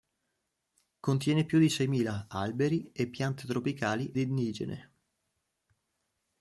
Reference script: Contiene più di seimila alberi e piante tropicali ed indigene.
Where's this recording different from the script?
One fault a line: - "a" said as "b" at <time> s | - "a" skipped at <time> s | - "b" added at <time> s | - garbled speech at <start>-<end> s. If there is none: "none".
- "ed" skipped at 4.1 s